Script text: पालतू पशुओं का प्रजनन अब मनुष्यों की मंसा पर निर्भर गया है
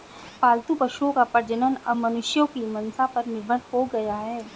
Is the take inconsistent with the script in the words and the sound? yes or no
yes